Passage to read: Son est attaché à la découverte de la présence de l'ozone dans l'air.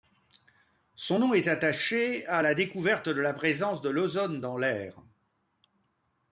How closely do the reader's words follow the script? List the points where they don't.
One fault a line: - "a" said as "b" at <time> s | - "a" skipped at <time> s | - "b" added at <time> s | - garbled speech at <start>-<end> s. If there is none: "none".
- "nom" added at 1.2 s